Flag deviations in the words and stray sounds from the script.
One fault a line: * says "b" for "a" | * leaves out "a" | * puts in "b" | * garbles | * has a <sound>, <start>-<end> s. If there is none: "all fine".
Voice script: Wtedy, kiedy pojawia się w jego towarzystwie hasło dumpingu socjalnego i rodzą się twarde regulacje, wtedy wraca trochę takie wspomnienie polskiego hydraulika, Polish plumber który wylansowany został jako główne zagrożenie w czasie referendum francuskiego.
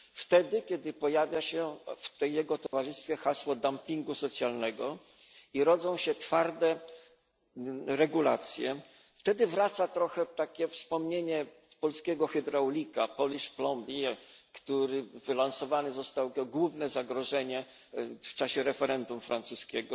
* has a dropout, 2.7-2.7 s